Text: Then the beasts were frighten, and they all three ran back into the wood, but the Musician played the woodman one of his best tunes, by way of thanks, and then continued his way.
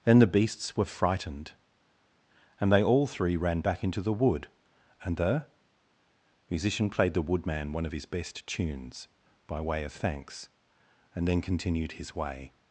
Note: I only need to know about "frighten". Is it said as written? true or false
false